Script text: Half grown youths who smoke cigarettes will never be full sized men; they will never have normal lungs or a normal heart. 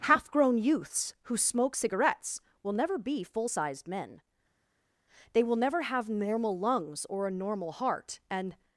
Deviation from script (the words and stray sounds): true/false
true